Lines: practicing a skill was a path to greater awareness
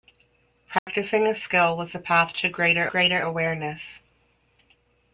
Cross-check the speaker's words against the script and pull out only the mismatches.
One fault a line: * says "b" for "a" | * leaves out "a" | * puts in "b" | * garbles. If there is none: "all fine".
* puts in "greater"